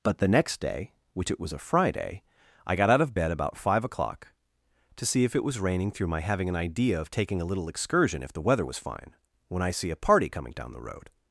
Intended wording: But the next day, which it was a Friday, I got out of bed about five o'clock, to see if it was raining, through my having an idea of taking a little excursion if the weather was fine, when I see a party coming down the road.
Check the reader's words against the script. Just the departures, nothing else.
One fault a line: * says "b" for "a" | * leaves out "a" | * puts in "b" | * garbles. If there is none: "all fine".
all fine